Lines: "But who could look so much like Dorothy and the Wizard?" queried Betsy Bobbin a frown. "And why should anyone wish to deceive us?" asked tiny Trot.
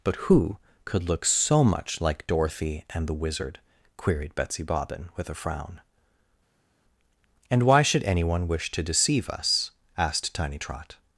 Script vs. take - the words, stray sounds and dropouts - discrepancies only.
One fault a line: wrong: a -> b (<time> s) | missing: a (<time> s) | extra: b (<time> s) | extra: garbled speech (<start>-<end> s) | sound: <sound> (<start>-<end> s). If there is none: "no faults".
extra: with (5.2 s)